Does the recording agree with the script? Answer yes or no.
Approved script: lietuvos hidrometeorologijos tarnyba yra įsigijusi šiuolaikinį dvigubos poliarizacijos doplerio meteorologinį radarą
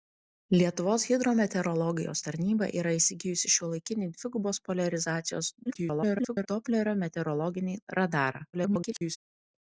no